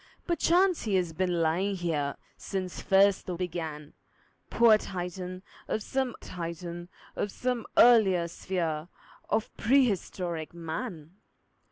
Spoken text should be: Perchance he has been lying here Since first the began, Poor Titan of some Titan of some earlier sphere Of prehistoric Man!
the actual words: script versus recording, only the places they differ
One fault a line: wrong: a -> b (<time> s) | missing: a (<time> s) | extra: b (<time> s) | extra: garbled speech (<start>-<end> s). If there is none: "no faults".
no faults